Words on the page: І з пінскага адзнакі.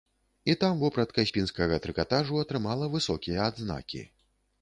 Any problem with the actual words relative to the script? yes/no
yes